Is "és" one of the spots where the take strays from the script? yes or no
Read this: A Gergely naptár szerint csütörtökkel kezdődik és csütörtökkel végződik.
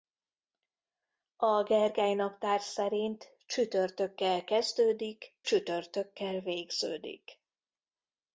yes